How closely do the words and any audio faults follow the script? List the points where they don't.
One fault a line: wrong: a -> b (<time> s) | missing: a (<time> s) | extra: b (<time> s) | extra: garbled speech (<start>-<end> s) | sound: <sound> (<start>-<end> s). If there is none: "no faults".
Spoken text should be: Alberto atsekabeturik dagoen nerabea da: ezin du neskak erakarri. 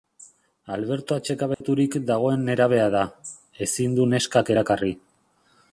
sound: dropout (1.5-1.6 s)